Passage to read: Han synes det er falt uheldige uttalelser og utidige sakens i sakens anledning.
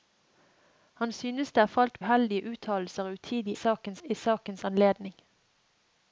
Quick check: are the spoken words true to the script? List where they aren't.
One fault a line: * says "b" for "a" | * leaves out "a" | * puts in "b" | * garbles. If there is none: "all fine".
all fine